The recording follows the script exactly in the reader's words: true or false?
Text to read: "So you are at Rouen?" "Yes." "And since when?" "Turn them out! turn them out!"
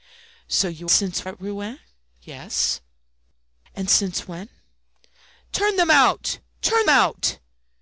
false